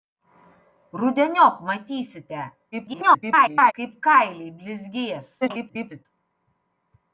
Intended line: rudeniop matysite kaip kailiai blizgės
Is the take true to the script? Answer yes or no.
no